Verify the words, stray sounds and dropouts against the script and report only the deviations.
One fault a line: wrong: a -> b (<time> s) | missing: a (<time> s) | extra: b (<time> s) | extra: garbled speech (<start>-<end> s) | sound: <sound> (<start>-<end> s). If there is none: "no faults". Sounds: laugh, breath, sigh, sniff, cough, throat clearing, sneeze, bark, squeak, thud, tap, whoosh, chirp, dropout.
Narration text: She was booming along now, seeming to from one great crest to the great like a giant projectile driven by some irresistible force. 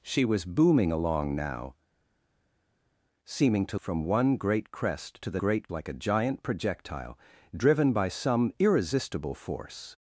no faults